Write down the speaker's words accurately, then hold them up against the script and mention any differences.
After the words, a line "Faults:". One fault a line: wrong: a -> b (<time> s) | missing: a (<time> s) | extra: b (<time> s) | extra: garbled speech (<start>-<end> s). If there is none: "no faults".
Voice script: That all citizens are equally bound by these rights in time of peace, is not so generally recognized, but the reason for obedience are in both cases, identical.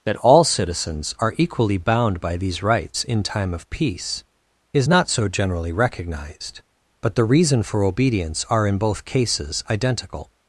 That all citizens are equally bound by these rights in time of peace, is not so generally recognized, but the reason for obedience are in both cases, identical.
Faults:
no faults